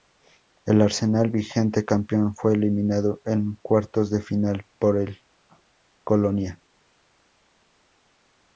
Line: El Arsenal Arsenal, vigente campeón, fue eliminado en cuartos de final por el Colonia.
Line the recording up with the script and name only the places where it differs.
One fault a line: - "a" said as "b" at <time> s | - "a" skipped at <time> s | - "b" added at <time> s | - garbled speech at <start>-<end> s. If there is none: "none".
- "Arsenal" skipped at 1.3 s